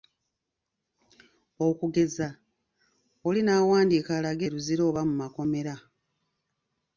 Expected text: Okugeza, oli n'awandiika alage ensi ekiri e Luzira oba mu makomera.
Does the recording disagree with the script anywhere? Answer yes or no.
yes